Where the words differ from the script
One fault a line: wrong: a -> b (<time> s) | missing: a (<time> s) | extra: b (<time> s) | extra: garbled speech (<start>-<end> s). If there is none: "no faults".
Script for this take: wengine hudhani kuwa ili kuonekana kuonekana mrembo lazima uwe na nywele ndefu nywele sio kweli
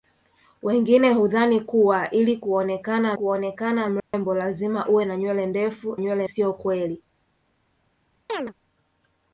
no faults